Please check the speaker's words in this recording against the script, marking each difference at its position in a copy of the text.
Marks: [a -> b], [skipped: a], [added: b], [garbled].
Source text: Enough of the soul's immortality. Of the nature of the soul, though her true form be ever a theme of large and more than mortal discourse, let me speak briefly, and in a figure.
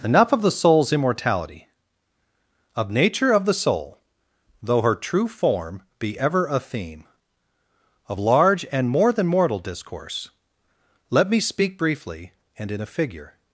Enough of the soul's immortality. Of [skipped: the] nature of the soul, though her true form be ever a theme of large and more than mortal discourse, let me speak briefly, and in a figure.